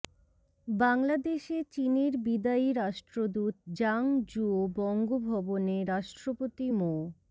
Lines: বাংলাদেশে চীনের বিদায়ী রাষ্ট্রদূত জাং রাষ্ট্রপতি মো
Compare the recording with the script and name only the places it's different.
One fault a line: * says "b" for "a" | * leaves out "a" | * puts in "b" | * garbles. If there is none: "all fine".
* puts in "জুও বঙ্গভবনে"